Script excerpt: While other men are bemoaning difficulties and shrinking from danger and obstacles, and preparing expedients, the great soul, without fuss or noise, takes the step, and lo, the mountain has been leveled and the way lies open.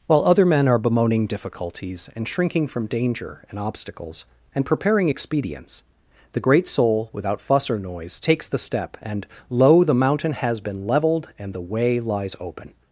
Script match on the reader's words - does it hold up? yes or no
yes